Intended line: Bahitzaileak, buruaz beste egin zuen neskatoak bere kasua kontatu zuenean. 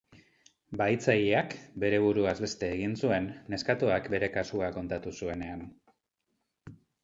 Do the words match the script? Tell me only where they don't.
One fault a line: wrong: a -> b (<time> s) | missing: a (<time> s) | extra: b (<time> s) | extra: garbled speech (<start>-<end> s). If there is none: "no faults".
extra: bere (1.8 s)